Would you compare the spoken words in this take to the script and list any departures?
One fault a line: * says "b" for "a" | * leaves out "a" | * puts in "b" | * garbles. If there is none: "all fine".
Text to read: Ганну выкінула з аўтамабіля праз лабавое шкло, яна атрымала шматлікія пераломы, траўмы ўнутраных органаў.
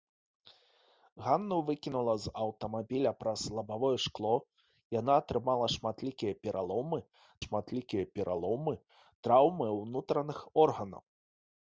* puts in "шматлікія пераломы"